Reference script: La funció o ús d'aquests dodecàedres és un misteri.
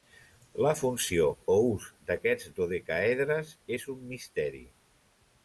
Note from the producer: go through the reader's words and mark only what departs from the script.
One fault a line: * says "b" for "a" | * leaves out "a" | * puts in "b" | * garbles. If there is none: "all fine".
all fine